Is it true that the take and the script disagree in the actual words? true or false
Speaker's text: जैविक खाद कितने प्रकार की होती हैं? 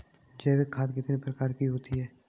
false